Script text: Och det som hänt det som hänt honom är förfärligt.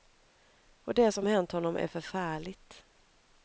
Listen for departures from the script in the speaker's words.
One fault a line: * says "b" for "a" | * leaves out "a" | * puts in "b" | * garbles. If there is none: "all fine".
* leaves out "det som hänt"